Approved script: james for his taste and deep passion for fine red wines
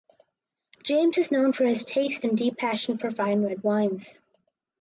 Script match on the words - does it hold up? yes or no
no